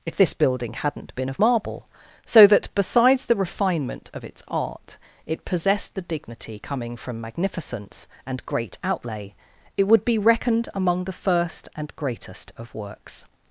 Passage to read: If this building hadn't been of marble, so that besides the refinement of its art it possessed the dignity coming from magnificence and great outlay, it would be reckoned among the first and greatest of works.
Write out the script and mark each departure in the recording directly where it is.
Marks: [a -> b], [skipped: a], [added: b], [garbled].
If this building hadn't been of marble, so that besides the refinement of its art it possessed the dignity coming from magnificence and great outlay, it would be reckoned among the first and greatest of works.